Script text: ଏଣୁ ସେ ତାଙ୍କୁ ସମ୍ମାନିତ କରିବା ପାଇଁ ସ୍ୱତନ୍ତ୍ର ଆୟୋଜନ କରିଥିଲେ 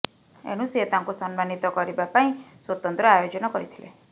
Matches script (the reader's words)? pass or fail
pass